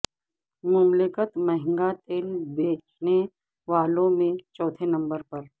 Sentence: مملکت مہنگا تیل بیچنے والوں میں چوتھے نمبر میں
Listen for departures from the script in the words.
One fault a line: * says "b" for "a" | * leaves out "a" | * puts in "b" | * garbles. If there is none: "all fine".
* says "پر" for "میں"